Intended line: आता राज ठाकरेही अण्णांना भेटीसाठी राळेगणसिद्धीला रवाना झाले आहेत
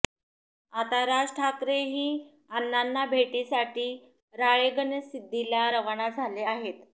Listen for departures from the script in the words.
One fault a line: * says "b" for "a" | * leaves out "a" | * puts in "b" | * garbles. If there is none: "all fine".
all fine